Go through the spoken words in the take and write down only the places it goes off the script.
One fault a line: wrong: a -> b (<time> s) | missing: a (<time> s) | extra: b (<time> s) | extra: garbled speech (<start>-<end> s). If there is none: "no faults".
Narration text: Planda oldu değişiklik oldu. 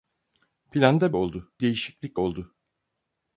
no faults